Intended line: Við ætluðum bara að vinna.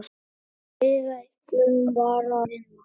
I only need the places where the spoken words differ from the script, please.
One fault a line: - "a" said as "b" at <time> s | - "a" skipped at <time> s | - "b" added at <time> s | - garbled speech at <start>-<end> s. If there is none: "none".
- "að" skipped at 2.4 s